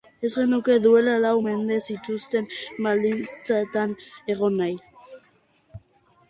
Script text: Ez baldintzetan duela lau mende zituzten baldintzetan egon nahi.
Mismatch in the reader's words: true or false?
true